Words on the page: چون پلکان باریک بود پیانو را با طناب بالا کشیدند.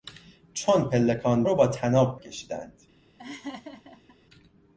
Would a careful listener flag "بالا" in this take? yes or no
yes